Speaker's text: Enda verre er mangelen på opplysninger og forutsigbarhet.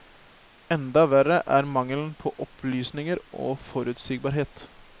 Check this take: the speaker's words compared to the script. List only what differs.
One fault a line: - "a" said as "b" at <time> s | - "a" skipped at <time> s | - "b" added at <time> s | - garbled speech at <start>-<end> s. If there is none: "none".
none